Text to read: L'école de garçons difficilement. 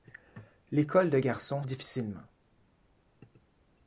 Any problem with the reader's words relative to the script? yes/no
no